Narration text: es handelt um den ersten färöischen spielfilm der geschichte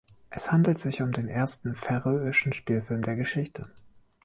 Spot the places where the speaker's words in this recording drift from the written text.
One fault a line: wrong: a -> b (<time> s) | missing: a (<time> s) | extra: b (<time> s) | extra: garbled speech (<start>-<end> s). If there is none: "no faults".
extra: sich (0.8 s)